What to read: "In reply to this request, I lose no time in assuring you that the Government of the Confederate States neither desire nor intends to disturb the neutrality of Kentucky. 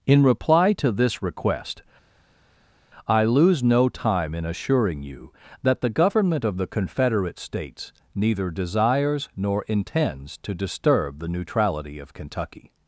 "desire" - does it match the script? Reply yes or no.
no